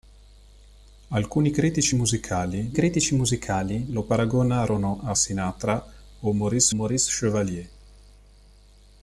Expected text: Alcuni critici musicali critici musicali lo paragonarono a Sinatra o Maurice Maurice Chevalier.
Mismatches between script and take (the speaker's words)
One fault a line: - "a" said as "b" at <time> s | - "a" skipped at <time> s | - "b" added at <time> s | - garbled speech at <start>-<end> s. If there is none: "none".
none